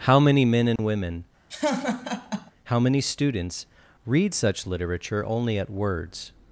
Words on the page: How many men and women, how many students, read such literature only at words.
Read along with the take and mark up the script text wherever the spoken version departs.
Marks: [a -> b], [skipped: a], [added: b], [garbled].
How many men and women, how many students, read such literature only at words.